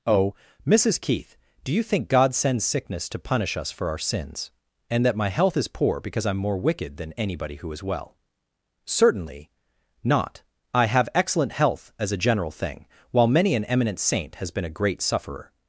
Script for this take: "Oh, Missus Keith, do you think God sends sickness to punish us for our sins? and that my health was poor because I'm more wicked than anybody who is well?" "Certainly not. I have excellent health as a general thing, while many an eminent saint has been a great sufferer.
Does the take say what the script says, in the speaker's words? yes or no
no